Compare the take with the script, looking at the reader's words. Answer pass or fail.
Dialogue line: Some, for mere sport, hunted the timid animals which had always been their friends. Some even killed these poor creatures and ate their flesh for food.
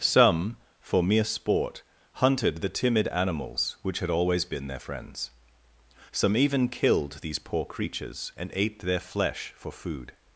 pass